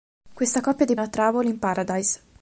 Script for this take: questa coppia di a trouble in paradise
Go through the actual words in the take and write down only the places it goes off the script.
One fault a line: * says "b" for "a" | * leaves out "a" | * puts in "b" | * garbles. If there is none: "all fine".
all fine